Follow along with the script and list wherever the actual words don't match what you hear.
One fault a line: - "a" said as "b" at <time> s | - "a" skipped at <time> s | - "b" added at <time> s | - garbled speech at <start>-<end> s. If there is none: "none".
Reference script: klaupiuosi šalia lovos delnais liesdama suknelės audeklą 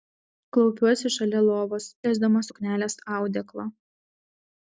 - "delnais" skipped at 1.9 s